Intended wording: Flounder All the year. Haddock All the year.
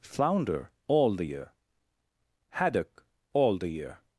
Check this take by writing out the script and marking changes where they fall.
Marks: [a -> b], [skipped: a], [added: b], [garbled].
Flounder All the year. Haddock All the year.